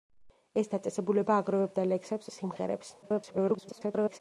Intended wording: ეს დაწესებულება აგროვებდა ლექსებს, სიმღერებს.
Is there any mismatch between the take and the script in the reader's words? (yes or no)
yes